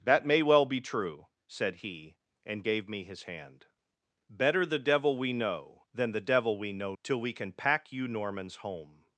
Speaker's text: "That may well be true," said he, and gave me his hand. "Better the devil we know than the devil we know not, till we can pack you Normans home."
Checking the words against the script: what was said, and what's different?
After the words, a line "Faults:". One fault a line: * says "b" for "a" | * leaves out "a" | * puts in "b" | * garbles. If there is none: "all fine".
"That may well be true," said he, and gave me his hand. "Better the devil we know than the devil we know till we can pack you Normans home."
Faults:
* leaves out "not"